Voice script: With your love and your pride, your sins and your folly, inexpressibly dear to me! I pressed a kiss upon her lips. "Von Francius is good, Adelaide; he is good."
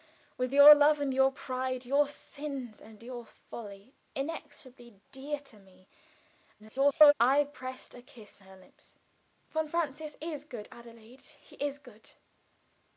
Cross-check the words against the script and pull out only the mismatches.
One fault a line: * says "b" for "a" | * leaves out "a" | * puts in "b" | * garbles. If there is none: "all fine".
* garbles
* leaves out "upon"